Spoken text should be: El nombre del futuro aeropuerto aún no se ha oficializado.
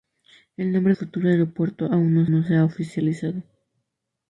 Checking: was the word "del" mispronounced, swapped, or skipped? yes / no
yes